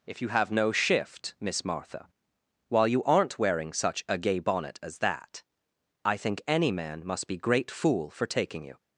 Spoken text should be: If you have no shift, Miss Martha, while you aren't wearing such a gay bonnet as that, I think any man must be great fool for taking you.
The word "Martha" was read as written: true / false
true